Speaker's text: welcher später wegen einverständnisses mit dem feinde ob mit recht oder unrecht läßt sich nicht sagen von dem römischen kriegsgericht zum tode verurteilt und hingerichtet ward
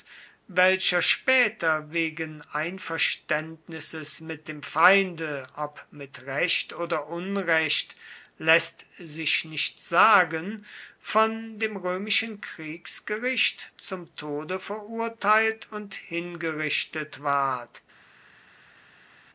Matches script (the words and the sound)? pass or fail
pass